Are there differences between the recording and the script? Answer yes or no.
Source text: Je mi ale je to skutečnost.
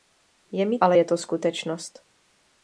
no